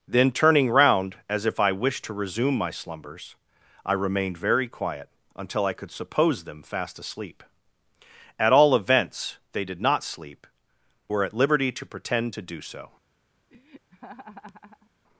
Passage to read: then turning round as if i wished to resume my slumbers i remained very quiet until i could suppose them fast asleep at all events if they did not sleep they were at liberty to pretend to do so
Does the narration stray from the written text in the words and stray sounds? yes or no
yes